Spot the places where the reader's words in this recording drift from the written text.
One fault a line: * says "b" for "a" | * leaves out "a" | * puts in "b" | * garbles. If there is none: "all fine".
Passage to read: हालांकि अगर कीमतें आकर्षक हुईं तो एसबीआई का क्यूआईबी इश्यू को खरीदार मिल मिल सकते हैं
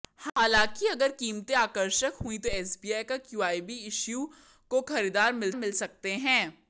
all fine